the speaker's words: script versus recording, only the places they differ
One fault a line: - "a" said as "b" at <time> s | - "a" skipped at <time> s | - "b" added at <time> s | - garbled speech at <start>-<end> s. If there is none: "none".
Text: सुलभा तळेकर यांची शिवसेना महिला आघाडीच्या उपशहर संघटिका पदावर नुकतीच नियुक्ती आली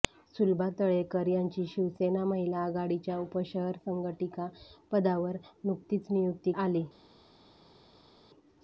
none